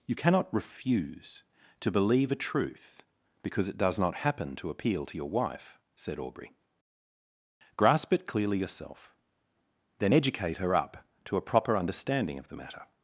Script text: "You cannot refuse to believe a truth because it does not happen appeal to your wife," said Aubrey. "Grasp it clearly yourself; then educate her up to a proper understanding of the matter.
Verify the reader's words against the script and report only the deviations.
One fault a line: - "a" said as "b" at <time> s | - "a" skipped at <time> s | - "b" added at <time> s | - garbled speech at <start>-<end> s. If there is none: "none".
- "to" added at 4.6 s